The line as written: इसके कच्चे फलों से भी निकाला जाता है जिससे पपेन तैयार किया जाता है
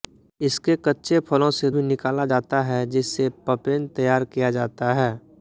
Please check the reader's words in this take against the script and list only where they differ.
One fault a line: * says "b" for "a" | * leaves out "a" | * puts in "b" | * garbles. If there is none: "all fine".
all fine